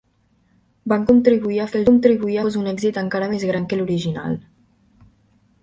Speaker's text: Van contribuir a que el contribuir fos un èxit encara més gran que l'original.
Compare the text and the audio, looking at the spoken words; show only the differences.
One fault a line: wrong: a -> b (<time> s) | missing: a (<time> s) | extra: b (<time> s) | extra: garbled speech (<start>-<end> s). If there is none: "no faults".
no faults